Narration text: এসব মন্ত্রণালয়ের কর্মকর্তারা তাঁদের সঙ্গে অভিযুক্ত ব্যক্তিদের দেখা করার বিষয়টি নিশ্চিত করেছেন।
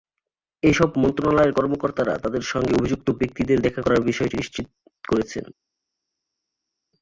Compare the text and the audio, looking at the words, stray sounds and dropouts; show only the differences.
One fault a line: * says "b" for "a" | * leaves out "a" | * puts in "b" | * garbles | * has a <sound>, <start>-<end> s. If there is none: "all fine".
all fine